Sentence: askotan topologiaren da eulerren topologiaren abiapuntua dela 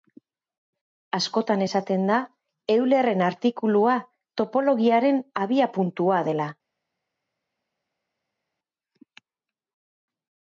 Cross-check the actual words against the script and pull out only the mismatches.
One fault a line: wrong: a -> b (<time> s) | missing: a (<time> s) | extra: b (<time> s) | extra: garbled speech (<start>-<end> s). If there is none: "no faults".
wrong: topologiaren -> esaten (1.6 s)
extra: artikulua (3.3 s)